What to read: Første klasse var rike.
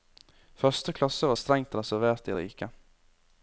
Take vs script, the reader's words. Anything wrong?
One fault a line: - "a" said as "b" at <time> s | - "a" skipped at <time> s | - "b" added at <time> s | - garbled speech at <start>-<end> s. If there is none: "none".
- "strengt reservert de" added at 1.4 s